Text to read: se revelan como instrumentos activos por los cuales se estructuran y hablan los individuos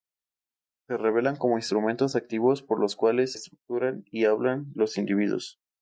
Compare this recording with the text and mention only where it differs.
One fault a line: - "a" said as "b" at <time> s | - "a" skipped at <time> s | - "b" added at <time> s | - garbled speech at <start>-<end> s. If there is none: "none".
- "se" skipped at 3.3 s